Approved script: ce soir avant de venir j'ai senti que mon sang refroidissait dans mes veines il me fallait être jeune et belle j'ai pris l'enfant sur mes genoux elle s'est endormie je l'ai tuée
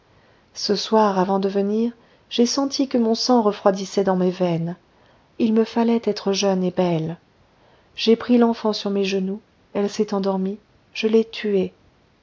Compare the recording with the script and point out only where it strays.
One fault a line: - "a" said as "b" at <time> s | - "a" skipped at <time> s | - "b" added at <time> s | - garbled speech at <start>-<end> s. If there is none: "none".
none